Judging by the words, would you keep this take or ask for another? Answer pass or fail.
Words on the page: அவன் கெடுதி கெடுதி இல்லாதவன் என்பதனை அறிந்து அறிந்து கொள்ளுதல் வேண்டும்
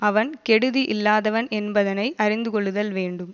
fail